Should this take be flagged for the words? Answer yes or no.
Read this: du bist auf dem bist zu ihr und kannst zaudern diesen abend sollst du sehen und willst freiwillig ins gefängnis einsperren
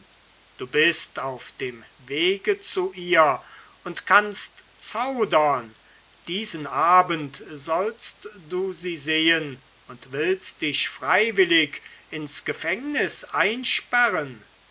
yes